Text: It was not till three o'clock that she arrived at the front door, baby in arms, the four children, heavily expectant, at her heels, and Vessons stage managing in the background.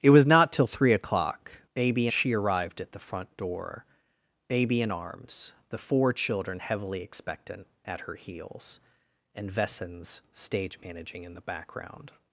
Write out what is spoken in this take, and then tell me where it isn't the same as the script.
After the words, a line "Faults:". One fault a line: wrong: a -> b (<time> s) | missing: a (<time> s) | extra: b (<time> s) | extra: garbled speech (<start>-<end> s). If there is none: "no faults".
It was not till three o'clock baby she arrived at the front door, baby in arms, the four children, heavily expectant, at her heels, and Vessons stage managing in the background.
Faults:
wrong: that -> baby (1.7 s)